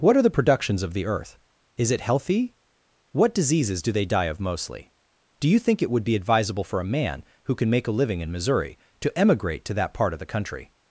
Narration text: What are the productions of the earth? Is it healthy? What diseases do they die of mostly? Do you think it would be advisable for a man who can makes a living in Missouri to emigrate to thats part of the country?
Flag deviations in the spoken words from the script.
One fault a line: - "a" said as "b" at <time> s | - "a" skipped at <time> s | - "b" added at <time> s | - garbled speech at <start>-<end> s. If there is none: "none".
- "makes" said as "make" at 7.7 s
- "thats" said as "that" at 9.8 s